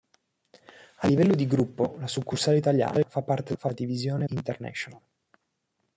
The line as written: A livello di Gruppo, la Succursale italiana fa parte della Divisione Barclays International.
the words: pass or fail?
fail